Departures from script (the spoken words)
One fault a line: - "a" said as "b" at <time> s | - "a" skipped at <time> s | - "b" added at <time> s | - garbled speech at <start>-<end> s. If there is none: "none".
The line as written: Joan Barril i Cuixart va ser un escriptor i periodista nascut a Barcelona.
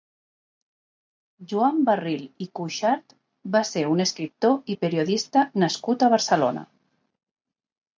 none